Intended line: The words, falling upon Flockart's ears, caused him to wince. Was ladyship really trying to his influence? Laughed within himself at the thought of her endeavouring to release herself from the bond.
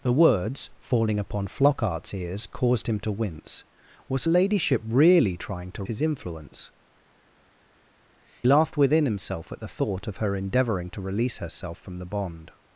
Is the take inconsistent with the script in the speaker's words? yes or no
no